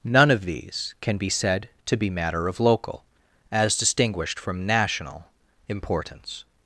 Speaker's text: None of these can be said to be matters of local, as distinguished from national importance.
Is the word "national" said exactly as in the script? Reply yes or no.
yes